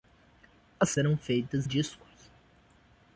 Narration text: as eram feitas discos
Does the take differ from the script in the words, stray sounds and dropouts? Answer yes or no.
no